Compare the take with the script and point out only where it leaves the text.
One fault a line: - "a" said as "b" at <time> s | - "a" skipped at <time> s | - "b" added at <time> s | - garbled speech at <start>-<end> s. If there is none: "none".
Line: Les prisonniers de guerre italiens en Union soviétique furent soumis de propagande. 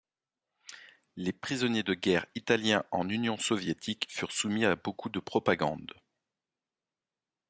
- "à beaucoup" added at 4.6 s